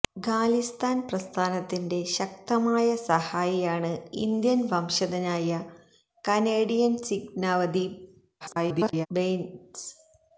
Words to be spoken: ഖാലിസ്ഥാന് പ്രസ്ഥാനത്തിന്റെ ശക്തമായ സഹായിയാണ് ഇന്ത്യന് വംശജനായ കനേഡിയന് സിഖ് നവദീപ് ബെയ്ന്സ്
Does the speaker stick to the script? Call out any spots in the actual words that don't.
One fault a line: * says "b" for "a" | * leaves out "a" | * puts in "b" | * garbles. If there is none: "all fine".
* garbles